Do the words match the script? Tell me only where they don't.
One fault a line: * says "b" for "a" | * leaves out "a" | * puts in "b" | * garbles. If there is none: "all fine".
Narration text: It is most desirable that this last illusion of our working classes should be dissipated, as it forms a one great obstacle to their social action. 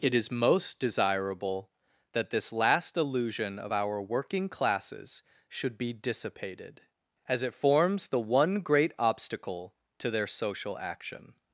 * says "the" for "a"